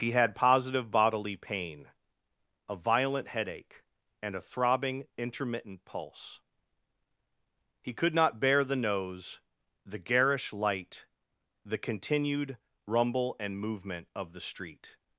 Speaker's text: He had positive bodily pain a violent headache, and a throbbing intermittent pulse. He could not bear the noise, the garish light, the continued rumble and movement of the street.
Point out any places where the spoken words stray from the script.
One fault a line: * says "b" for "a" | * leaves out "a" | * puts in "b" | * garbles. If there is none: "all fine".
* says "nose" for "noise"